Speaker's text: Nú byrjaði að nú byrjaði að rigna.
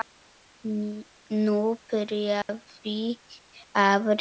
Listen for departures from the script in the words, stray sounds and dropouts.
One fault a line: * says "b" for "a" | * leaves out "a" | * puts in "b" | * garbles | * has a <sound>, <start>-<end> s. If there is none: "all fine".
* has a dropout, 2.4-2.5 s
* leaves out "nú byrjaði að"